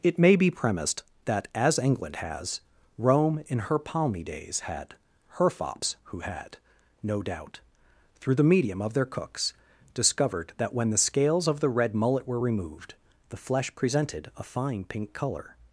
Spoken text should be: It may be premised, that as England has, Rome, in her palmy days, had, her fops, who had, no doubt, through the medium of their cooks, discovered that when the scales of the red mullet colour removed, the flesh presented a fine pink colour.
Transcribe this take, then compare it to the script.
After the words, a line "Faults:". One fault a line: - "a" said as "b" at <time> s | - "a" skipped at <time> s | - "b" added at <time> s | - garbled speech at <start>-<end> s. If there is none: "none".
It may be premised, that as England has, Rome, in her palmy days, had, her fops, who had, no doubt, through the medium of their cooks, discovered that when the scales of the red mullet were removed, the flesh presented a fine pink colour.
Faults:
- "colour" said as "were" at 12.3 s